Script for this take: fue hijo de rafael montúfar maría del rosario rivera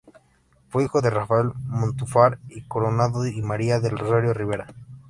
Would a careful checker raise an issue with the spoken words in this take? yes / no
yes